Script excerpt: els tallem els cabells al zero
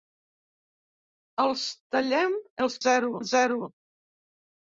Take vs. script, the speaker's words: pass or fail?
fail